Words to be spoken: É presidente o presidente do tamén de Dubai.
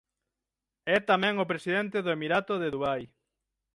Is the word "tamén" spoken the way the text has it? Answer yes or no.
no